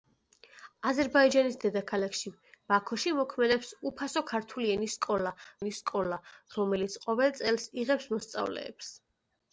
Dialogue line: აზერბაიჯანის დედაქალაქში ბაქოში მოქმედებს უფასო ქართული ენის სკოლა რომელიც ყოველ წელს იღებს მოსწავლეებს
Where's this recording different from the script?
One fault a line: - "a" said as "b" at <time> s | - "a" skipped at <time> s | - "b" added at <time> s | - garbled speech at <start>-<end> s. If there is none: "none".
- "ენის სკოლა" added at 5.6 s